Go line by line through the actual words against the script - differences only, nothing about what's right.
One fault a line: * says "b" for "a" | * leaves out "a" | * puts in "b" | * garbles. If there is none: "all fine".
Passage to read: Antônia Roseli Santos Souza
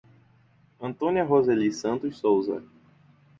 all fine